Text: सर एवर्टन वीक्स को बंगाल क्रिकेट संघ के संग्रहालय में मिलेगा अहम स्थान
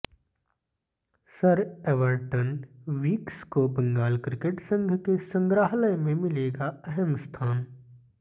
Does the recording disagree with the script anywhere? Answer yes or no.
no